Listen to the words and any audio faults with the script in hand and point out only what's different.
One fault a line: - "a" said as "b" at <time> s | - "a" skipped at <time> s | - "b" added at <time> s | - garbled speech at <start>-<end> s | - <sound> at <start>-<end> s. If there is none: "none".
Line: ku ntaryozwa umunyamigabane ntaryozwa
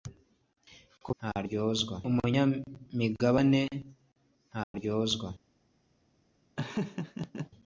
- dropout at 4.6-4.7 s
- laugh at 6.6-7.5 s